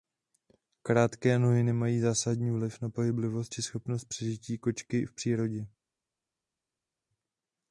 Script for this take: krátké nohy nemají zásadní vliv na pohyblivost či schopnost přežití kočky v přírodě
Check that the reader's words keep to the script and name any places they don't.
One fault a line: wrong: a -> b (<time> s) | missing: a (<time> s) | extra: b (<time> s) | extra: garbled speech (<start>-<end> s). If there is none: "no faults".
no faults